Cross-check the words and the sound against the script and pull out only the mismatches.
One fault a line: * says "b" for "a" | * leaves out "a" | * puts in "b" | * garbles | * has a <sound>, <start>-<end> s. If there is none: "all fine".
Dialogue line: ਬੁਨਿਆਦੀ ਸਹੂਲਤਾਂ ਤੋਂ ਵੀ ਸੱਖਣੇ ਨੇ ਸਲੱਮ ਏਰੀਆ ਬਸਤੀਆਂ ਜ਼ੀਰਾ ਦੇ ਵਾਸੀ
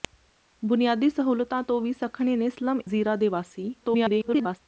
* leaves out "ਏਰੀਆ ਬਸਤੀਆਂ"
* garbles